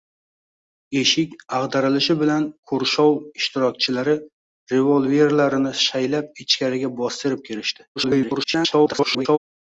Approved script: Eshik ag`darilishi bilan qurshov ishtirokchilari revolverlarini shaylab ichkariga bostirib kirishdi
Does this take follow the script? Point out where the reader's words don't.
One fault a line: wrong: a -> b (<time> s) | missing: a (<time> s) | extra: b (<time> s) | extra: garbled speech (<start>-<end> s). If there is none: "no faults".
extra: garbled speech (8.0-9.4 s)